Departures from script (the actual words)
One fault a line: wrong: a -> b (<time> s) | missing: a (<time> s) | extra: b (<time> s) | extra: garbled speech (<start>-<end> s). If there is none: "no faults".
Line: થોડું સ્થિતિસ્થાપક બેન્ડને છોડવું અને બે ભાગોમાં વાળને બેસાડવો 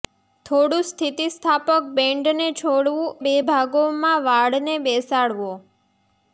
missing: અને (3.1 s)